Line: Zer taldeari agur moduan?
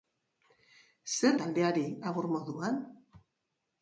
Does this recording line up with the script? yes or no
yes